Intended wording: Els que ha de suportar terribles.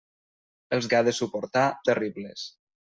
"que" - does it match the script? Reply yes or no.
yes